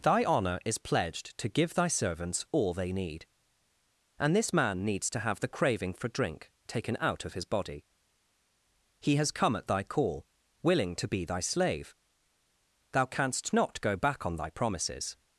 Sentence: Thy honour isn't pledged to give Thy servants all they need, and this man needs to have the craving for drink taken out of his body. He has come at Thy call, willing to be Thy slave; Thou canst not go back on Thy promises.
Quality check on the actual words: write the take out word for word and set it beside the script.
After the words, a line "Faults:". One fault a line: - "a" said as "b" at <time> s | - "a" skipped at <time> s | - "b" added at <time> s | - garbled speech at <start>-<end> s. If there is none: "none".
Thy honour is pledged to give Thy servants all they need, and this man needs to have the craving for drink taken out of his body. He has come at Thy call, willing to be Thy slave; Thou canst not go back on Thy promises.
Faults:
- "isn't" said as "is" at 0.7 s